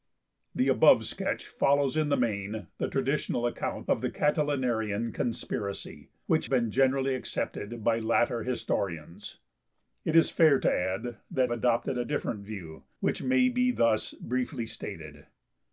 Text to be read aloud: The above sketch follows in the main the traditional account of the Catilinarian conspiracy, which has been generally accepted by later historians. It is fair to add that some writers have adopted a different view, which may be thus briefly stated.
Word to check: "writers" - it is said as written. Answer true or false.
false